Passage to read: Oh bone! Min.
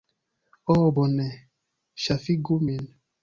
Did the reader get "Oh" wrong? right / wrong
right